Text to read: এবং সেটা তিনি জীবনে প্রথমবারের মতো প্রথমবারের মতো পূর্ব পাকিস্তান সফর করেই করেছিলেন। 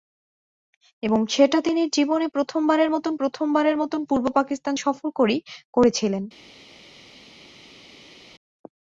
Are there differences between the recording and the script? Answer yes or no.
no